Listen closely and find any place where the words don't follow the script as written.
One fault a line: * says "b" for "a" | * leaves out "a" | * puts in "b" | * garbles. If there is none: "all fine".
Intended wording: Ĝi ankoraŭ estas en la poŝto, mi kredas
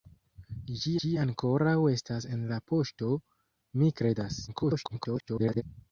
* puts in "ĝi"
* garbles